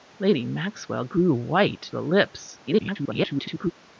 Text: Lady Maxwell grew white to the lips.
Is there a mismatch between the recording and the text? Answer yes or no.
yes